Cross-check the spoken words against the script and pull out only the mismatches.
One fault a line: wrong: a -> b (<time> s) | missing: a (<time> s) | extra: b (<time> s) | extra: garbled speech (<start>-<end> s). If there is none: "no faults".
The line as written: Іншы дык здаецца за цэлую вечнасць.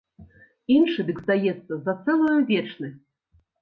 no faults